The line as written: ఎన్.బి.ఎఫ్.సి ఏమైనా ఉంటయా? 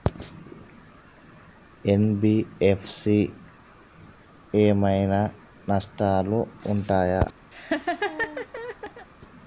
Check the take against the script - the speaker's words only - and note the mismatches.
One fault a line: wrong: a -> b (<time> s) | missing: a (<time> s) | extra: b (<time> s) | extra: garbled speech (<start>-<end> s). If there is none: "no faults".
extra: నష్టాలు (5.7 s)